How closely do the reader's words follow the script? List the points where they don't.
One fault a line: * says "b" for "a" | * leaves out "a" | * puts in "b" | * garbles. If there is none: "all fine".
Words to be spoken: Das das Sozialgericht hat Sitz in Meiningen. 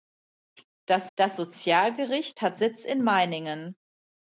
all fine